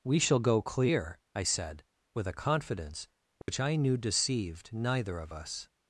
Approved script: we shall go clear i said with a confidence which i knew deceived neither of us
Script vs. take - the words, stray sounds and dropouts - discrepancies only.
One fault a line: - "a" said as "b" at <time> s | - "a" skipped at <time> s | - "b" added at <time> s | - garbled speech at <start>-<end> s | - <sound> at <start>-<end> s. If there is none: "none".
- dropout at 3.4-3.5 s